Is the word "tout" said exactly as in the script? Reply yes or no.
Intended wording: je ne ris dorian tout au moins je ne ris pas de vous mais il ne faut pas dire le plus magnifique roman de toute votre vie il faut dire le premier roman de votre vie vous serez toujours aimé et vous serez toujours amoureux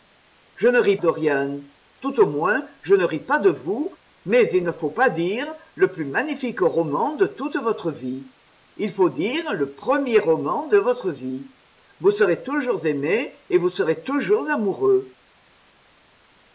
yes